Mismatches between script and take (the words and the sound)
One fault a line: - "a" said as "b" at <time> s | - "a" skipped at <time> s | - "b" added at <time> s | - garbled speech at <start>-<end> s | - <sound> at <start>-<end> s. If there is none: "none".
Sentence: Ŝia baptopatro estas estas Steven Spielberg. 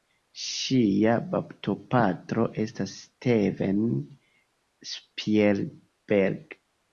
- "estas" skipped at 2.9 s